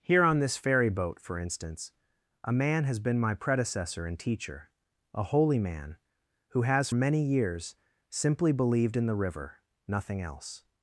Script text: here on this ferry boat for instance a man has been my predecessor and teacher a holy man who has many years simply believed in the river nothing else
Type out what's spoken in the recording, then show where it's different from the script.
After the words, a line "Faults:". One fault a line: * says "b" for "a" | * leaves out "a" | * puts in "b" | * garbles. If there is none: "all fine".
here on this ferry boat for instance a man has been my predecessor and teacher a holy man who has many years simply believed in the river nothing else
Faults:
all fine